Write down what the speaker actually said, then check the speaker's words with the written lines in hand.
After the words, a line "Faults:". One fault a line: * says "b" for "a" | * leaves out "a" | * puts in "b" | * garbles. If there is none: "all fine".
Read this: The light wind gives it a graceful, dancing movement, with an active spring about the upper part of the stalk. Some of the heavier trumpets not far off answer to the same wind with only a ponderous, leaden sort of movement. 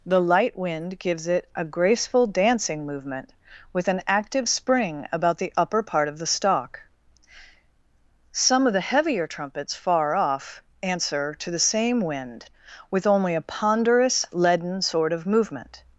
The light wind gives it a graceful, dancing movement, with an active spring about the upper part of the stalk. Some of the heavier trumpets far off answer to the same wind with only a ponderous, leaden sort of movement.
Faults:
* leaves out "not"